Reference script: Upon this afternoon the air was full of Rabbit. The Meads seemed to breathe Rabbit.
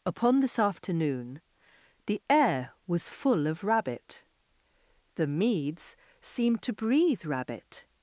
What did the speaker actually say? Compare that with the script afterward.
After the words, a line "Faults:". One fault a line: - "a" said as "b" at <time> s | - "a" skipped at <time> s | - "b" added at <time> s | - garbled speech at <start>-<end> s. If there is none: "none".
Upon this afternoon the air was full of Rabbit. The Meads seemed to breathe Rabbit.
Faults:
none